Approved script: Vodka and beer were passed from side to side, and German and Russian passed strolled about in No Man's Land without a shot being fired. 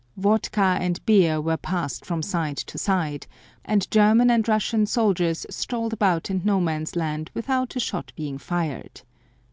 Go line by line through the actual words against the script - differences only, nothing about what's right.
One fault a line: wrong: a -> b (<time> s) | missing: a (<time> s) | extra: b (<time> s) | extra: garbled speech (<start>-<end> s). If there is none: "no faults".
wrong: passed -> soldiers (4.8 s)